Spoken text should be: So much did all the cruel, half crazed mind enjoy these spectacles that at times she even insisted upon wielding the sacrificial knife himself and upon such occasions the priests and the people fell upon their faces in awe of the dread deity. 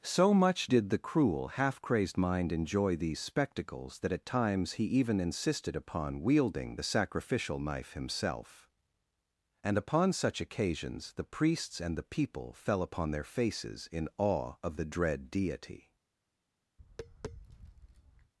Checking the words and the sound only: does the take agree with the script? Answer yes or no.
no